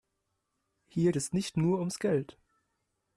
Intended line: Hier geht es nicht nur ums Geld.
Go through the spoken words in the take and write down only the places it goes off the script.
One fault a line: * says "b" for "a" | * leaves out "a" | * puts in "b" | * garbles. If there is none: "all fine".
* leaves out "geht"